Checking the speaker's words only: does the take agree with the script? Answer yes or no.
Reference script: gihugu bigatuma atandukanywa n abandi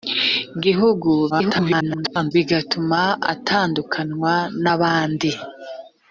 no